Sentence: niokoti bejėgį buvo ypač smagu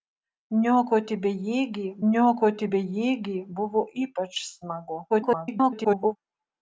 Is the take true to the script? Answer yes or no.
no